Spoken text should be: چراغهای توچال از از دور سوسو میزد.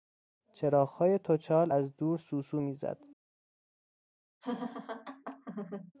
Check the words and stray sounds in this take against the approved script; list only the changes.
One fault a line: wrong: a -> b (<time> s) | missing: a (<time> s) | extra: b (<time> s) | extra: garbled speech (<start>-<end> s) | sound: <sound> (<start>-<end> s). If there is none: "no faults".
missing: از (2.0 s)
sound: laugh (4.4-5.9 s)